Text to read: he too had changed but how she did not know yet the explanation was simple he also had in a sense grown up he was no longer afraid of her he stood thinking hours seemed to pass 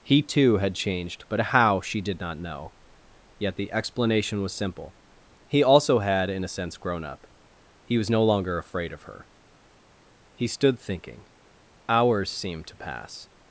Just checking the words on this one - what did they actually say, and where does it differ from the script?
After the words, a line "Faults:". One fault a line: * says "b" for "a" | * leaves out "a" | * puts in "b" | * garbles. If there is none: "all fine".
he too had changed but how she did not know yet the explanation was simple he also had in a sense grown up he was no longer afraid of her he stood thinking hours seemed to pass
Faults:
all fine